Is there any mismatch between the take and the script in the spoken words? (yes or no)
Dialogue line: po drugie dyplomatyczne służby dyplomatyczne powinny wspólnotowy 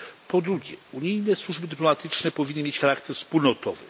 yes